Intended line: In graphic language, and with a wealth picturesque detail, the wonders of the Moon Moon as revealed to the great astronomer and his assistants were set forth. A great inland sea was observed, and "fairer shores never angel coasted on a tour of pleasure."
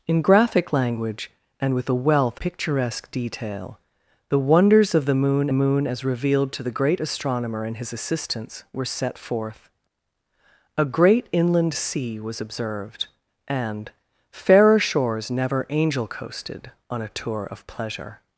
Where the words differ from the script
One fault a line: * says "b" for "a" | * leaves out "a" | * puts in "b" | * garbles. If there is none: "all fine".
all fine